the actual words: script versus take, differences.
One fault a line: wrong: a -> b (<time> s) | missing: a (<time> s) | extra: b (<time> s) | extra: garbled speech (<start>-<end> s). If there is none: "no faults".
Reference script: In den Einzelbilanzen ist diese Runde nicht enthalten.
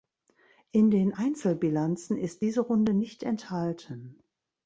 no faults